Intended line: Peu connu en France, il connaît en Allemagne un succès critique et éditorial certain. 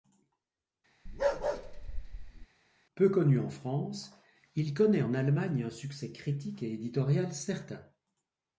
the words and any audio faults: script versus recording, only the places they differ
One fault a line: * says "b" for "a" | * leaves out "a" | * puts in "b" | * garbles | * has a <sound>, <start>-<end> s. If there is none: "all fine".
* has a bark, 1.1-2.5 s